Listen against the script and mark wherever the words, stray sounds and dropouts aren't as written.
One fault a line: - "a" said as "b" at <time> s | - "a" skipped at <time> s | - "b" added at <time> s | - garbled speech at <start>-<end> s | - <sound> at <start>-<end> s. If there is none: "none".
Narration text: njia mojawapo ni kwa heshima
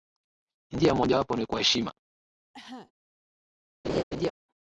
- cough at 2.5-2.9 s
- laugh at 3.8-4.3 s